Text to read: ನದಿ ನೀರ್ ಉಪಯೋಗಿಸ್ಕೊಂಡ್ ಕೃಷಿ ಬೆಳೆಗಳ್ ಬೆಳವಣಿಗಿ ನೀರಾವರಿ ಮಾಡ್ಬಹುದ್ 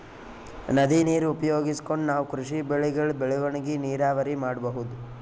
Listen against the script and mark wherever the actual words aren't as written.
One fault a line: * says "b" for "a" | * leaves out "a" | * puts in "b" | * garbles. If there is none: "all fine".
* puts in "ನಾವ್"